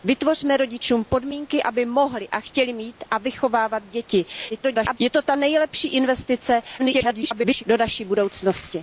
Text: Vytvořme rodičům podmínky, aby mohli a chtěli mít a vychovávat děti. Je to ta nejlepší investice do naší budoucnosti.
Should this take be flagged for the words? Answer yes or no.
yes